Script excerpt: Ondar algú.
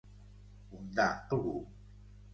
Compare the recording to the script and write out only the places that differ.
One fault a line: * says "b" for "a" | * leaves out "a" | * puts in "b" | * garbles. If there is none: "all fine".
all fine